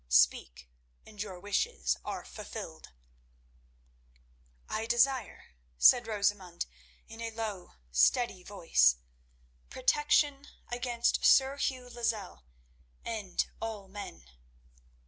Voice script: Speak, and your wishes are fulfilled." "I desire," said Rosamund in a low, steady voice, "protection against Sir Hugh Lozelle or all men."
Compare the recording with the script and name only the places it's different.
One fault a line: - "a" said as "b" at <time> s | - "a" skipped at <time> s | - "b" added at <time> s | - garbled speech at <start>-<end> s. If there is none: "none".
- "or" said as "and" at 13.0 s